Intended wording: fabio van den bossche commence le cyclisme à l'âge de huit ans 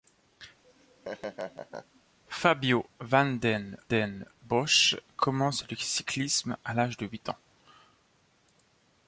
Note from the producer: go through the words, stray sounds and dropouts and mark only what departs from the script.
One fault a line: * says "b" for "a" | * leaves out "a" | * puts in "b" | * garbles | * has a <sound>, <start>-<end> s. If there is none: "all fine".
* has a laugh, 0.6-2.0 s
* puts in "den"